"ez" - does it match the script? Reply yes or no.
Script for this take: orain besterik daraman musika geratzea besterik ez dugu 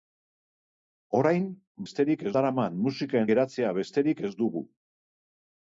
yes